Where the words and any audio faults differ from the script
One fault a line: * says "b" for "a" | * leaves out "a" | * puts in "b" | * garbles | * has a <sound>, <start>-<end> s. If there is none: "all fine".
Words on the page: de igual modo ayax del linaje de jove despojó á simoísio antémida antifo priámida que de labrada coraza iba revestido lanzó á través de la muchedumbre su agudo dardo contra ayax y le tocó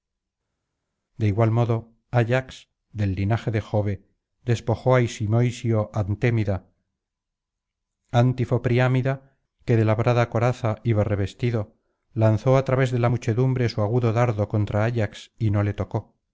* puts in "no"